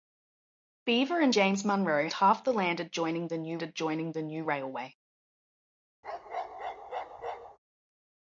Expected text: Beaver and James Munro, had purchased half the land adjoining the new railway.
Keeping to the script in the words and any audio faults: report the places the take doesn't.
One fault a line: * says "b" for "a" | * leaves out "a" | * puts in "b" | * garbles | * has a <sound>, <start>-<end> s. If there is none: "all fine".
* says "half the land adjoining" for "had purchased half"
* says "new" for "land"
* has a bark, 6.0-7.6 s